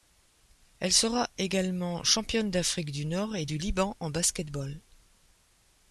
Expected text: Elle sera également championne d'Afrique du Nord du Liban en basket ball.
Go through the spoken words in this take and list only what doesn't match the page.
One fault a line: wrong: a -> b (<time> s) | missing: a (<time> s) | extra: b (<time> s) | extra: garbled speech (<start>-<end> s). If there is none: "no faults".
extra: et (3.4 s)